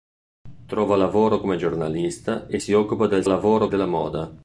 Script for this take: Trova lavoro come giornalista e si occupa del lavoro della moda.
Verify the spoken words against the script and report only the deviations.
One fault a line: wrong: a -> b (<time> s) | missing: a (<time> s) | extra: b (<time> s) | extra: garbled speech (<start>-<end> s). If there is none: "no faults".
no faults